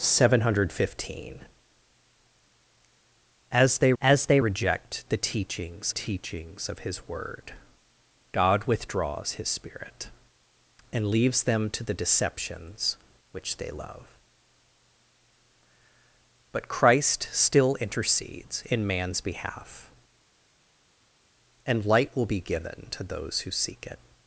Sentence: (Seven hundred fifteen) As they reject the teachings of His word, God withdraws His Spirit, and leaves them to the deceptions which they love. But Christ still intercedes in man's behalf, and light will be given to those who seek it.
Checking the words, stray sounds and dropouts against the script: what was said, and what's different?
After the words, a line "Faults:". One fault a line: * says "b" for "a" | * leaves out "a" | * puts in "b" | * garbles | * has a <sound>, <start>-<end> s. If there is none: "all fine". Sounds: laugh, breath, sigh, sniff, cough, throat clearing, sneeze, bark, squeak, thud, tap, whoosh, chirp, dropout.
(Seven hundred fifteen) As they As they reject the teachings teachings of His word, God withdraws His Spirit, and leaves them to the deceptions which they love. But Christ still intercedes in man's behalf, and light will be given to those who seek it.
Faults:
* puts in "As they"
* puts in "teachings"